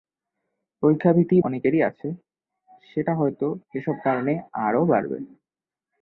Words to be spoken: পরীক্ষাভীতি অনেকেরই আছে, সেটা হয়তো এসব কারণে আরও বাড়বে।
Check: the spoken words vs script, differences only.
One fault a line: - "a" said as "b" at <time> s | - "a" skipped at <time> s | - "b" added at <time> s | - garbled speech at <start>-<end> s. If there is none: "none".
none